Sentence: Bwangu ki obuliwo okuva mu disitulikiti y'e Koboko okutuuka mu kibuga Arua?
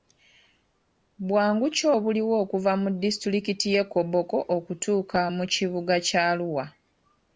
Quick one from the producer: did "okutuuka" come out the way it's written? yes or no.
yes